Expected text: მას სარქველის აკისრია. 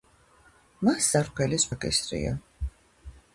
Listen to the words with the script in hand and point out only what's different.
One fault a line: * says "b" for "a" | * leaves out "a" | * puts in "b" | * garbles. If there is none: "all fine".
all fine